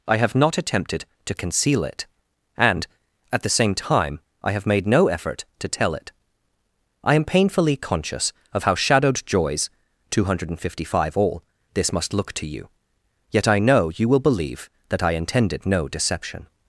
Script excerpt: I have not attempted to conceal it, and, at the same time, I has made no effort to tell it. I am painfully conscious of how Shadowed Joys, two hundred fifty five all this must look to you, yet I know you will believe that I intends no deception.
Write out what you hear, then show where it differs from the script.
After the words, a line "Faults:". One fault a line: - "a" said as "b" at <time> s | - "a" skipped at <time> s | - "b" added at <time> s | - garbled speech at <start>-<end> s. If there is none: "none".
I have not attempted to conceal it, and, at the same time, I have made no effort to tell it. I am painfully conscious of how Shadowed Joys, two hundred fifty five all this must look to you, yet I know you will believe that I intended no deception.
Faults:
- "has" said as "have" at 4.5 s
- "intends" said as "intended" at 15.1 s